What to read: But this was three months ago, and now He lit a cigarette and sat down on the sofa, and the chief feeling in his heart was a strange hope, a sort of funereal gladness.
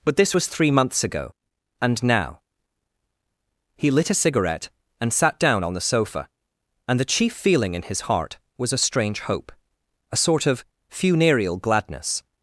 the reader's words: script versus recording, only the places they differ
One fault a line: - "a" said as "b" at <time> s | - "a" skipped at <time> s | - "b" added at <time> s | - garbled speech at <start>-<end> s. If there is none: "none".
none